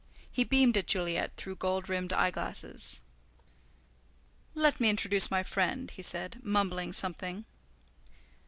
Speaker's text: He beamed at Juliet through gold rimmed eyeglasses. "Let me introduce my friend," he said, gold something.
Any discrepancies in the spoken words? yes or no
yes